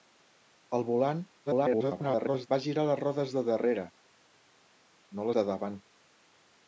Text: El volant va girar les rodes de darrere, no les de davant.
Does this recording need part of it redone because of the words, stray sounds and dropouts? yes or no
yes